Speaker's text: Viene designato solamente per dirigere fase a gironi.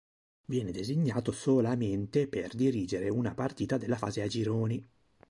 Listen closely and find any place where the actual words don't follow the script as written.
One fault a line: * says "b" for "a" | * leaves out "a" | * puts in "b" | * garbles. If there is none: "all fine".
* puts in "una partita della"